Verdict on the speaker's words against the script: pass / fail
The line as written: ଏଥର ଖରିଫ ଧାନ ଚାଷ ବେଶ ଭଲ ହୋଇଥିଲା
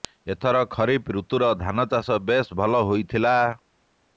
fail